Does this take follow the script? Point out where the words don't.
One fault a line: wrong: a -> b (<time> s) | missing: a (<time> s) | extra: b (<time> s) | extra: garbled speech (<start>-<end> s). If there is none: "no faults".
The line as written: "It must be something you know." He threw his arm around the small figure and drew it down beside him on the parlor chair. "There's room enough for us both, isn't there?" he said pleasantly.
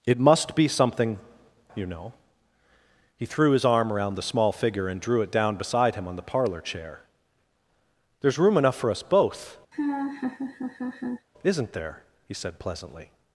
no faults